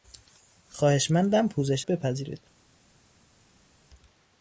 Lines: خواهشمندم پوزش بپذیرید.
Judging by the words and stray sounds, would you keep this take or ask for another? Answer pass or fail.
pass